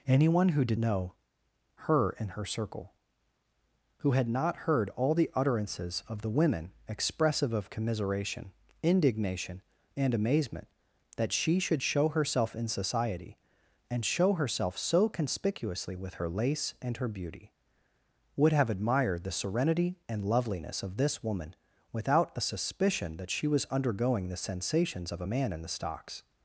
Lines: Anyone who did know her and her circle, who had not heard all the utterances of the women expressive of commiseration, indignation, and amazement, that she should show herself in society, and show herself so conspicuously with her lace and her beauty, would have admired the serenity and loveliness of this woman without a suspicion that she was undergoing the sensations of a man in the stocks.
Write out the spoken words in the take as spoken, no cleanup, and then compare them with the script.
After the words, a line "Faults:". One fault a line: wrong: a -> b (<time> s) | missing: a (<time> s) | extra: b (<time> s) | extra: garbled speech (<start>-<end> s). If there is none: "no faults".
Anyone who did know her and her circle, who had not heard all the utterances of the women expressive of commiseration, indignation, and amazement, that she should show herself in society, and show herself so conspicuously with her lace and her beauty, would have admired the serenity and loveliness of this woman without a suspicion that she was undergoing the sensations of a man in the stocks.
Faults:
no faults